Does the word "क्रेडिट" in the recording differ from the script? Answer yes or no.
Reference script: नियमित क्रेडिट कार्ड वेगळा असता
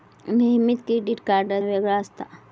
no